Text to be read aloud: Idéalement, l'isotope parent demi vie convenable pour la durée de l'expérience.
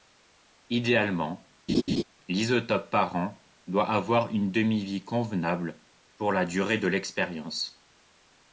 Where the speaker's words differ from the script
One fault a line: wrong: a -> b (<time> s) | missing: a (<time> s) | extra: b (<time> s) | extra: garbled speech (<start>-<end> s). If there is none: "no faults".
extra: doit avoir une (3.7 s)